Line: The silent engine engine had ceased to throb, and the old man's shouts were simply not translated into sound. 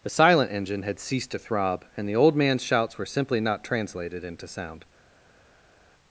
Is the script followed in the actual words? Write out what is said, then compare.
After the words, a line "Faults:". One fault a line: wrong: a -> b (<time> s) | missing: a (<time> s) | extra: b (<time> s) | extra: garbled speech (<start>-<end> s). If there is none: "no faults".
The silent engine had ceased to throb, and the old man's shouts were simply not translated into sound.
Faults:
missing: engine (0.8 s)